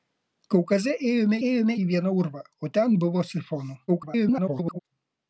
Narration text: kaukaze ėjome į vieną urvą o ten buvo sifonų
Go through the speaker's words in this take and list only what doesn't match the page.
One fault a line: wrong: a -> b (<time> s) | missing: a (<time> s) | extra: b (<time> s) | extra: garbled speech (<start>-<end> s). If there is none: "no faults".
extra: ėjome (1.5 s)
extra: garbled speech (3.9-4.8 s)